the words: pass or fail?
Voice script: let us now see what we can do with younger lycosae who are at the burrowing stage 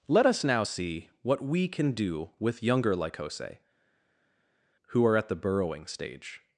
pass